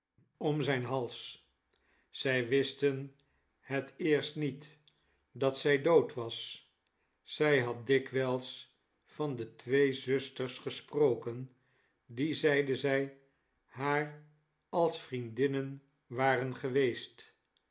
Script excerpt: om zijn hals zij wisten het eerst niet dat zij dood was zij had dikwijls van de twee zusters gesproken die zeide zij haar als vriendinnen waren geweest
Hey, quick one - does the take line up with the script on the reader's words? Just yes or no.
yes